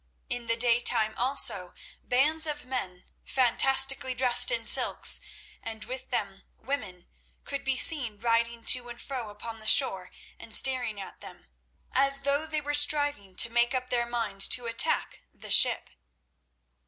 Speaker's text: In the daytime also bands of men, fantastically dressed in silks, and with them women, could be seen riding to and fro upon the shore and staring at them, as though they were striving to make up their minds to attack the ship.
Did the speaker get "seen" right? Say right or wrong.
right